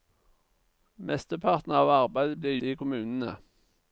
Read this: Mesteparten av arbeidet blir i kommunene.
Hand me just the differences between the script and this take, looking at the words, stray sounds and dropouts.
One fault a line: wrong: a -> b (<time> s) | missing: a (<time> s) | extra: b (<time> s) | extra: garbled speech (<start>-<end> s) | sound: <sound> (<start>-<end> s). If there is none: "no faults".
no faults